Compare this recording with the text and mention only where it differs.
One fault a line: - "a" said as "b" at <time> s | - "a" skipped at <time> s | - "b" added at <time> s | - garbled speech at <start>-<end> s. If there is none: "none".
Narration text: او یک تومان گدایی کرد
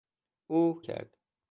- "یک تومان گدایی" skipped at 0.8 s